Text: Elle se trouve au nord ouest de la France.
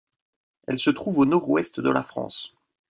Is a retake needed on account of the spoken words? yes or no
no